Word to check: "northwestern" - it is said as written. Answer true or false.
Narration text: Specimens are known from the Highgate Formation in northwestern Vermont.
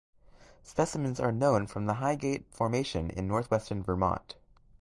true